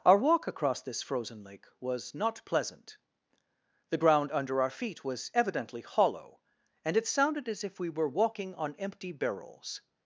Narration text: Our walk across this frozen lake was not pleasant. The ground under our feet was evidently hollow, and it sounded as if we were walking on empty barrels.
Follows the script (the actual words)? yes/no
yes